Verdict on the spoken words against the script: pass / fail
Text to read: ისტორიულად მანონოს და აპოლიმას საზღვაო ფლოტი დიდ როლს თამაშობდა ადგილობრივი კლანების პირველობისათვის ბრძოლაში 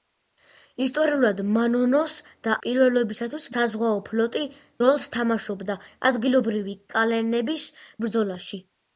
fail